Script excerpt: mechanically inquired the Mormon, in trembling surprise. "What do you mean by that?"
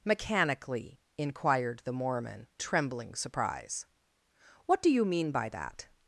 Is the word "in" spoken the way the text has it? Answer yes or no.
no